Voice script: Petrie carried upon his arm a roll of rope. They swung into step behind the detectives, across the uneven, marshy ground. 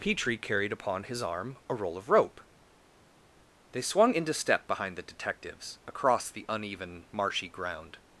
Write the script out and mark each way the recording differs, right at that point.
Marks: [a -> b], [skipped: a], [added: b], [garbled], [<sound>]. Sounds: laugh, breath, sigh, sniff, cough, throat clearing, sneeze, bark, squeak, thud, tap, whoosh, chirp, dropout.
Petrie carried upon his arm a roll of rope. They swung into step behind the detectives, across the uneven, marshy ground.